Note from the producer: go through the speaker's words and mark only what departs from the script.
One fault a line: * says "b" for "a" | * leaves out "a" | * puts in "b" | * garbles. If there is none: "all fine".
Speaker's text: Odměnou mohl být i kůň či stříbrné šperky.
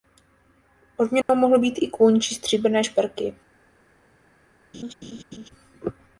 all fine